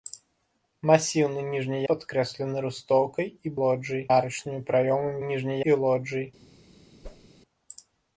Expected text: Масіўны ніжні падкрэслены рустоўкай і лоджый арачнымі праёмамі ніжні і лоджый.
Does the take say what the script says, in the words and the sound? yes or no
no